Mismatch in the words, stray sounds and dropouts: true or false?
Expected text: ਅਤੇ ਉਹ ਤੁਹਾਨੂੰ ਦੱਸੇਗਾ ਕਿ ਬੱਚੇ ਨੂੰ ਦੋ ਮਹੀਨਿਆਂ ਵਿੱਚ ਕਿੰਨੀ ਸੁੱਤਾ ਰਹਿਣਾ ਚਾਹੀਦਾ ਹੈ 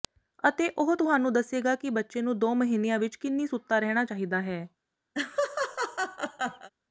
true